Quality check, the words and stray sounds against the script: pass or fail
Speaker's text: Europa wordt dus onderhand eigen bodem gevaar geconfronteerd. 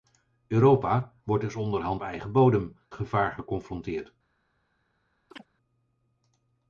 fail